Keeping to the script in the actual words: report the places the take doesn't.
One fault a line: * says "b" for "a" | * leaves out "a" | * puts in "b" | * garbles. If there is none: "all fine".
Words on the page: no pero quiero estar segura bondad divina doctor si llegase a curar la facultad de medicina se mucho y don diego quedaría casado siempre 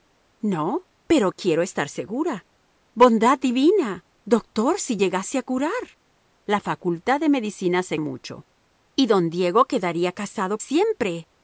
all fine